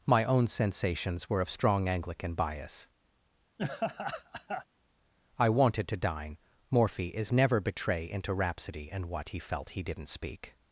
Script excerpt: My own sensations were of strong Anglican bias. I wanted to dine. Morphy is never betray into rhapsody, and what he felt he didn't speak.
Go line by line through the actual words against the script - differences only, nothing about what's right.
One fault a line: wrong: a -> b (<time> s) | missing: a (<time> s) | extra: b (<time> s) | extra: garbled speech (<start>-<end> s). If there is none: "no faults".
no faults